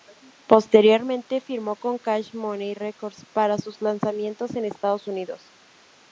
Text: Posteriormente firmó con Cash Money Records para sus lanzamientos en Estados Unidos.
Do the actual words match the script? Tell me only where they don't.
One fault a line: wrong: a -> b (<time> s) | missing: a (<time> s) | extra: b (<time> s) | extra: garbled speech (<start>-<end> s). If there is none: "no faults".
no faults